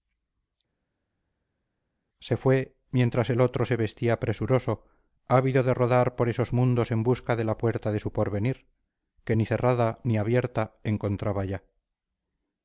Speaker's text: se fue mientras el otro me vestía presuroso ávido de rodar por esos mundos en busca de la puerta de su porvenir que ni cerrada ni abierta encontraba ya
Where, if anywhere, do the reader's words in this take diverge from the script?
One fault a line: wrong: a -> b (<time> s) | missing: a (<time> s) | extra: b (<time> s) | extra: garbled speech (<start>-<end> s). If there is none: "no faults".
wrong: me -> se (3.6 s)